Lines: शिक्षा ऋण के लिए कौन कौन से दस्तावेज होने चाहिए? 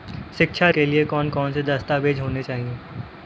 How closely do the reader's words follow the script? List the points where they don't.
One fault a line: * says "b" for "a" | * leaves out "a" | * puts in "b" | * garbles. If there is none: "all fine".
* leaves out "ऋण"